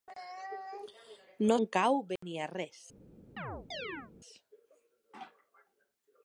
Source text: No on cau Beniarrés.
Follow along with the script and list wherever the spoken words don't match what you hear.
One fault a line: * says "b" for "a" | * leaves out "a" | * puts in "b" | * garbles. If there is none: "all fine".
all fine